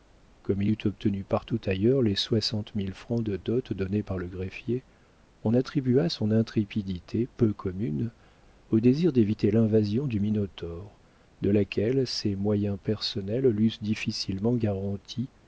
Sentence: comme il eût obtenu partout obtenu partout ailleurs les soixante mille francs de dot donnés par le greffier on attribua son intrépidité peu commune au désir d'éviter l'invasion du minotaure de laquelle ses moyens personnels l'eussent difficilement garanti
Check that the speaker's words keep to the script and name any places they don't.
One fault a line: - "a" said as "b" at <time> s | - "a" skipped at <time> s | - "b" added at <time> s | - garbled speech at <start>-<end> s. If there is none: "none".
- "obtenu partout" skipped at 1.6 s